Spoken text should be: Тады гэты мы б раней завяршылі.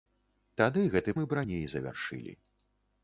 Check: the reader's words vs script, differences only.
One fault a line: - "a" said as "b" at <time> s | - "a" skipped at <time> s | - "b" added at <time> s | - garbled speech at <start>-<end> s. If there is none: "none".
none